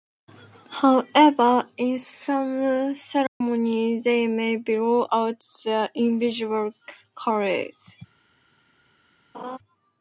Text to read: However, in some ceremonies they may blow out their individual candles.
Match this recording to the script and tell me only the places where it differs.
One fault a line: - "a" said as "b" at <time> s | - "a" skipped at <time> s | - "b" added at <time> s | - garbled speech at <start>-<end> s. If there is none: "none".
none